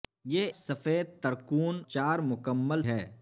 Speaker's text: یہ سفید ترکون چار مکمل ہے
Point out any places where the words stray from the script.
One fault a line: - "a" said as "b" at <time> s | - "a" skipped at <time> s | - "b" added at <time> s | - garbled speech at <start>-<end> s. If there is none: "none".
none